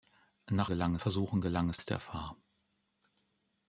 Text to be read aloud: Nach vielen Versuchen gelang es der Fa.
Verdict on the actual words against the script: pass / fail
fail